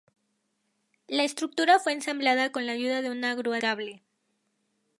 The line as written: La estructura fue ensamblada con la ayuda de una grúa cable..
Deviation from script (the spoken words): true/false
false